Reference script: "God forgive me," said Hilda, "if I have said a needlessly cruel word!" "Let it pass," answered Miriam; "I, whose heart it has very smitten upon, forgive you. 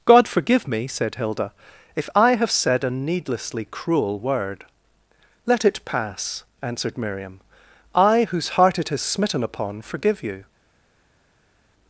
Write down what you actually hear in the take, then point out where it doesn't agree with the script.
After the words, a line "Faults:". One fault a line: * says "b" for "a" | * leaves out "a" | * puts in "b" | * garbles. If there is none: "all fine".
"God forgive me," said Hilda, "if I have said a needlessly cruel word!" "Let it pass," answered Miriam; "I, whose heart it has smitten upon, forgive you.
Faults:
* leaves out "very"